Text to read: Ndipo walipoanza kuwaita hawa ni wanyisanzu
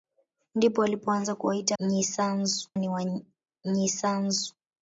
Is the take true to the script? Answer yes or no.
no